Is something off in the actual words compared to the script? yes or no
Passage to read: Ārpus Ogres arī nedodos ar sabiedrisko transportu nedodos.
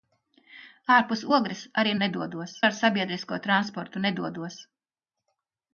no